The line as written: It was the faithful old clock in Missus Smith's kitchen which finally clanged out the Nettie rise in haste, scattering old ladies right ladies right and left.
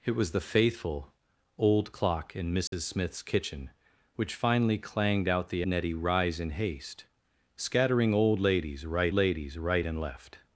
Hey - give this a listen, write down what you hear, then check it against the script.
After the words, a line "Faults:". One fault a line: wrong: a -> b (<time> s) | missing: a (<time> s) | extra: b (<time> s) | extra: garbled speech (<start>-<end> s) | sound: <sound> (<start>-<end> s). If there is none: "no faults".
It was the faithful old clock in Missus Smith's kitchen which finally clanged out the Nettie rise in haste, scattering old ladies right ladies right and left.
Faults:
sound: dropout (2.7-2.7 s)